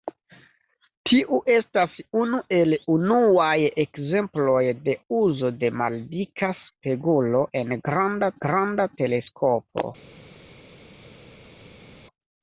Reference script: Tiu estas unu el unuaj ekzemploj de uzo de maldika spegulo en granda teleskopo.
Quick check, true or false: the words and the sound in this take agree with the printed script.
false